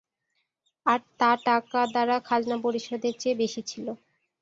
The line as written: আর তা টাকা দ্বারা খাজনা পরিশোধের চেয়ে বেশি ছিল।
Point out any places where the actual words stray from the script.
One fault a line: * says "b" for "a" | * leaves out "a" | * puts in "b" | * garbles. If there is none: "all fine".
all fine